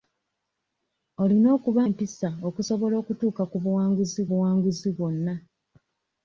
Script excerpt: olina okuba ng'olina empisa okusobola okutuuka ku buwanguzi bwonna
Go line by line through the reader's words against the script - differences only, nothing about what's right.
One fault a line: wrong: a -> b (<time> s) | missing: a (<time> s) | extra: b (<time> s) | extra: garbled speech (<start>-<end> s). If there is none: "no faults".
missing: ng'olina (1.8 s)
extra: buwanguzi (4.3 s)